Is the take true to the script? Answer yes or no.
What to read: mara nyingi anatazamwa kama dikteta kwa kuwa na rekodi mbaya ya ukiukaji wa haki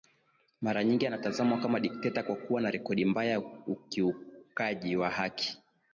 yes